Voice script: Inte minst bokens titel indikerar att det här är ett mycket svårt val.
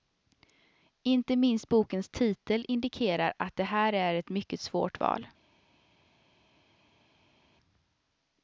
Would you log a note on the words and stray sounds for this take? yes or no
no